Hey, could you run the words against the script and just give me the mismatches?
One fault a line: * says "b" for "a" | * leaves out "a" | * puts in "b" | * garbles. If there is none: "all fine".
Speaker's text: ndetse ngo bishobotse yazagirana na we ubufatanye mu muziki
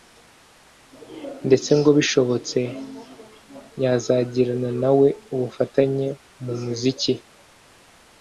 all fine